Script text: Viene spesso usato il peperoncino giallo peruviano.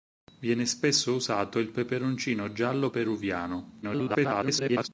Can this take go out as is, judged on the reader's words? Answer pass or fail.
fail